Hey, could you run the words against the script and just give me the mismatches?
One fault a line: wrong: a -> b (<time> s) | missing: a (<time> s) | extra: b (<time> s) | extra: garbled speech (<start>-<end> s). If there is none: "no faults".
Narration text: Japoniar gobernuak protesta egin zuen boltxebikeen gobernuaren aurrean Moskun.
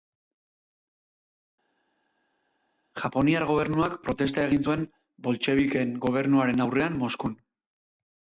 no faults